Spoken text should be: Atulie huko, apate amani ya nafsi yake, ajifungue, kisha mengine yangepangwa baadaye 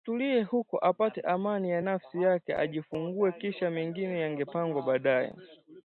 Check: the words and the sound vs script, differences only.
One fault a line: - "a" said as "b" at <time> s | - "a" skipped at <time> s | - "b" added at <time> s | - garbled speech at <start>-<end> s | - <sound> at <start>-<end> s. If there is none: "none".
none